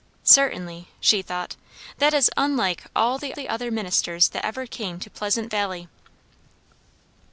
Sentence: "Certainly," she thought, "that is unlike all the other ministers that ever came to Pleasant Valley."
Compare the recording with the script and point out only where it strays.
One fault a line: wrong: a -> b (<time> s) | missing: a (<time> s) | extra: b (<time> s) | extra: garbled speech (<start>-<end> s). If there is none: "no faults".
extra: the (3.3 s)